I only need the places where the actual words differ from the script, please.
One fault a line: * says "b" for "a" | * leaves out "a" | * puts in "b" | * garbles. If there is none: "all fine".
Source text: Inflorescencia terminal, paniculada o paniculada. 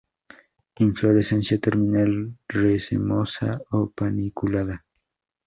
* says "racemosa" for "paniculada"